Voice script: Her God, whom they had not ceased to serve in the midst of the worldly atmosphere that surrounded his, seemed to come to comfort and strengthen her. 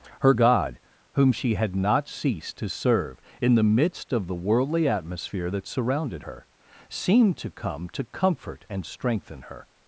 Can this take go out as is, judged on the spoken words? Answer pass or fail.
fail